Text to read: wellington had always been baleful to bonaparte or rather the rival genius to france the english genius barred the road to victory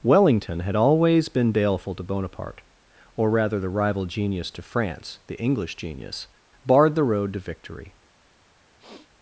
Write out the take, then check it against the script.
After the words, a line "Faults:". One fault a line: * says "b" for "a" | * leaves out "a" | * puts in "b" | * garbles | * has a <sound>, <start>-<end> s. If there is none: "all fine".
wellington had always been baleful to bonaparte or rather the rival genius to france the english genius barred the road to victory
Faults:
* has a sniff, 8.8-9.1 s